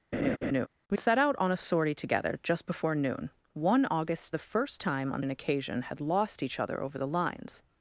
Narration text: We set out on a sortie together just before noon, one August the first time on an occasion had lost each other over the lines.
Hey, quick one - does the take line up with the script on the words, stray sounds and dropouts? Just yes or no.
no